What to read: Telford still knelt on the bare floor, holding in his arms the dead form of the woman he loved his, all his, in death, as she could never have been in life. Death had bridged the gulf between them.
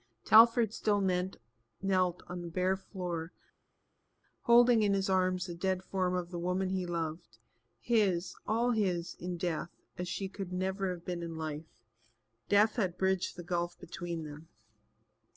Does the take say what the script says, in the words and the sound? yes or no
yes